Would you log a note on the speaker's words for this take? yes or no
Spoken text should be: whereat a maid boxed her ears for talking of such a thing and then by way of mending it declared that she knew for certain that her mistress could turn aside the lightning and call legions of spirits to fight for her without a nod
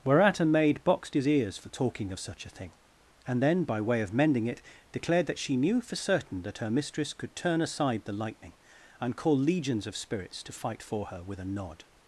yes